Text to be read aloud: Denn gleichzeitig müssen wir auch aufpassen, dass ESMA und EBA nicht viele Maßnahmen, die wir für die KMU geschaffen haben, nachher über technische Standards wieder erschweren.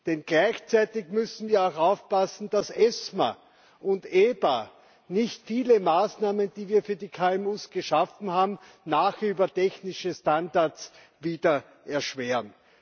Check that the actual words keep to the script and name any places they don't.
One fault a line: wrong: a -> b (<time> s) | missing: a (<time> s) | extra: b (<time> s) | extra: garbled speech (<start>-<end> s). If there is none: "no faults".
no faults